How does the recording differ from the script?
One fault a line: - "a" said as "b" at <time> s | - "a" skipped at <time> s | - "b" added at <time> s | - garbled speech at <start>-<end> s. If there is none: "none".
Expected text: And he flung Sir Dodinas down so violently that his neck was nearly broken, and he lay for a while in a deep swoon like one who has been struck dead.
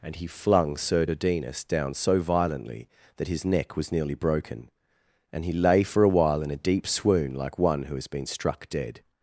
none